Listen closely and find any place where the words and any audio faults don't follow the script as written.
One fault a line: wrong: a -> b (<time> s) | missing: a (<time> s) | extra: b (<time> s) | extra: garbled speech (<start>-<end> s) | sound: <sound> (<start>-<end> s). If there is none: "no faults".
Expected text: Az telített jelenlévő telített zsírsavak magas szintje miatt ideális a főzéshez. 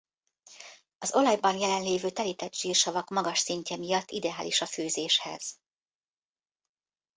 wrong: telített -> olajban (1.1 s)